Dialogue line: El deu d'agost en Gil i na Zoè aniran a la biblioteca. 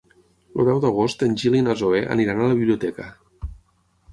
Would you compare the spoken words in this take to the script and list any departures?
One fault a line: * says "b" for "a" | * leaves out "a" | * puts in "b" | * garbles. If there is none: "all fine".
all fine